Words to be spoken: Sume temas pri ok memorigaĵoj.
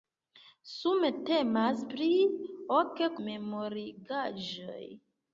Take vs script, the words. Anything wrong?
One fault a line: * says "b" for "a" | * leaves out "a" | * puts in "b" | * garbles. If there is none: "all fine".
all fine